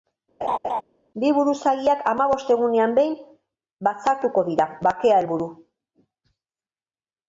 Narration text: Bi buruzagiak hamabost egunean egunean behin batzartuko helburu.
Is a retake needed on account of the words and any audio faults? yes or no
yes